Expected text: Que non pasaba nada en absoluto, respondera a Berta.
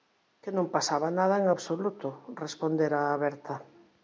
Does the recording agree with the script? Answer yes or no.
yes